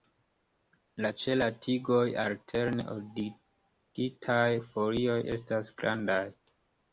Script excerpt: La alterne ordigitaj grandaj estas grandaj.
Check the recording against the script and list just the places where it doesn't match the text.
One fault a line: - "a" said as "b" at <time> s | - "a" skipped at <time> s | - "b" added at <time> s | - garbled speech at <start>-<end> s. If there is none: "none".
- "ĉe la tigoj" added at 1.2 s
- "grandaj" said as "folioj" at 4.7 s